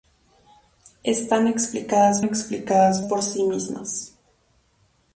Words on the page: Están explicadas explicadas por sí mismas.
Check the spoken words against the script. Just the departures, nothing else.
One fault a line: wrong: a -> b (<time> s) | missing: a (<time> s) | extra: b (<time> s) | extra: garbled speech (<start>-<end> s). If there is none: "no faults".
no faults